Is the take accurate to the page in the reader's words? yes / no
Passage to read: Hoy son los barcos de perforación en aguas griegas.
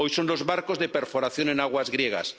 yes